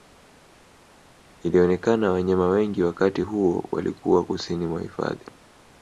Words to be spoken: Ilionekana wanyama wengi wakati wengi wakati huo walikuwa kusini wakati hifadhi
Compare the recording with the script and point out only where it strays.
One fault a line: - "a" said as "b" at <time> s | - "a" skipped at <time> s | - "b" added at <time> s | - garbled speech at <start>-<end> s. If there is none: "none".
- "wengi wakati" skipped at 3.2 s
- "wakati" said as "mwa" at 4.7 s